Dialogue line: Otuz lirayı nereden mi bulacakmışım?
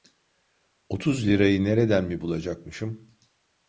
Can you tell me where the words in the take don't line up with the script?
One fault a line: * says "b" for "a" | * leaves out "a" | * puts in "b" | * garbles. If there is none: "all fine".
all fine